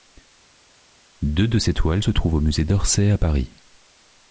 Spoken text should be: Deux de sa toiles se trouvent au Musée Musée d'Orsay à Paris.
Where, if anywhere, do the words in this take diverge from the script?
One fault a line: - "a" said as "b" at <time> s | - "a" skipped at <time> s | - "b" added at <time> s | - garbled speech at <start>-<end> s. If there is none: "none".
- "sa" said as "ses" at 1.6 s
- "Musée" skipped at 2.6 s